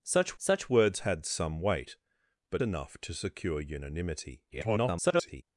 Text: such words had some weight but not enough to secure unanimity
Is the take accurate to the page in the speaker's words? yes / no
no